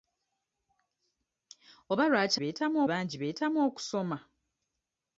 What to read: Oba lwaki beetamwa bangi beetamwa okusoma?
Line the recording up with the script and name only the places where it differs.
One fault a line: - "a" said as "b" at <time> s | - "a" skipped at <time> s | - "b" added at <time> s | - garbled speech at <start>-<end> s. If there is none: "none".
none